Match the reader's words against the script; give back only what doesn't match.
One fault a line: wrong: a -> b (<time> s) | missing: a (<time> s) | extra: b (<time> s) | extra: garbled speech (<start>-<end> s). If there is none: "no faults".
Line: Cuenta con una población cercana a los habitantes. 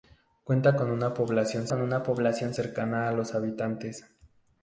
extra: con una población (1.7 s)